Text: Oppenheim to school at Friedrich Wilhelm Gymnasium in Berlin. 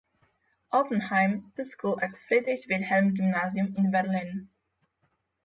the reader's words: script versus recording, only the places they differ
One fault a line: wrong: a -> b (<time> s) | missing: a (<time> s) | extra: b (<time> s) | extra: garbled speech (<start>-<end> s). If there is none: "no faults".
no faults